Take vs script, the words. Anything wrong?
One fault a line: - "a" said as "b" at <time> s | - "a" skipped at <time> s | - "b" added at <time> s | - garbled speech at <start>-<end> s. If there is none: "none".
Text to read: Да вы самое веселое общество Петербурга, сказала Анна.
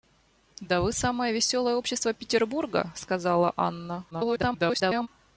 - garbled speech at 4.1-5.1 s